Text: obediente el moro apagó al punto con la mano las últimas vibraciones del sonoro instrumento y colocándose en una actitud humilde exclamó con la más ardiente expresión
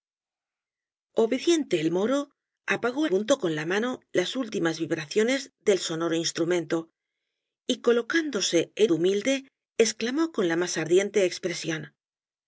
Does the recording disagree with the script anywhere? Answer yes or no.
yes